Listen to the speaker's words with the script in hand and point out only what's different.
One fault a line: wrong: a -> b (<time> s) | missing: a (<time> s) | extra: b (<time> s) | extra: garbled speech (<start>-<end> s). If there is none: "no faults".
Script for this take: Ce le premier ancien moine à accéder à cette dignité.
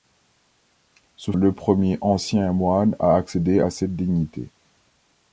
no faults